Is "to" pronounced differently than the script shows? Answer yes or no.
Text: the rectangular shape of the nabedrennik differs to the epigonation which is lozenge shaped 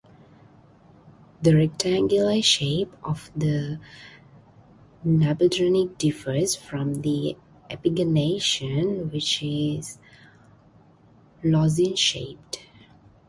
yes